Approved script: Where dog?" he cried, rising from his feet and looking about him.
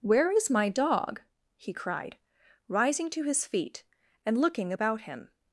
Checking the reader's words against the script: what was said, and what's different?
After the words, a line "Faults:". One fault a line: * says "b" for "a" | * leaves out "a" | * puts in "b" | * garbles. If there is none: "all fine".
Where is my dog?" he cried, rising to his feet and looking about him.
Faults:
* puts in "is my"
* says "to" for "from"